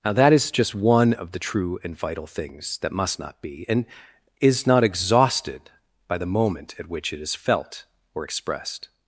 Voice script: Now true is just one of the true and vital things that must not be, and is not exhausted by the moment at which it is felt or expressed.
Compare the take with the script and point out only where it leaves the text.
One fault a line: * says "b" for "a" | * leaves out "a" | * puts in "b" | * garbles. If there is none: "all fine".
* says "that" for "true"